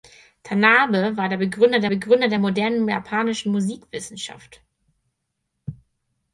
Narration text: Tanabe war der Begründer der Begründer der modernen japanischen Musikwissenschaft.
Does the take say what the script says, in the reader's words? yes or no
yes